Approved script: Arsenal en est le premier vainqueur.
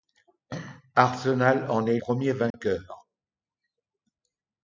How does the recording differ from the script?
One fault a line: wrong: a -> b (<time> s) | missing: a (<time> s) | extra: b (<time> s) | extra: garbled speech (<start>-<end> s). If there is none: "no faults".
missing: le (2.0 s)